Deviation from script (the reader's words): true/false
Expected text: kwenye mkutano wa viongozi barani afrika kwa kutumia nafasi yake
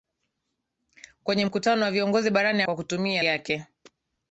true